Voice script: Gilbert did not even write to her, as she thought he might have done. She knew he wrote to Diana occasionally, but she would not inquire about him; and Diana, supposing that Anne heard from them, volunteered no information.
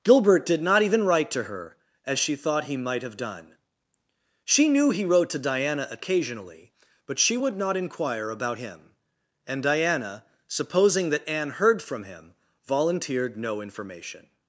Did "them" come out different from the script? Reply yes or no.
yes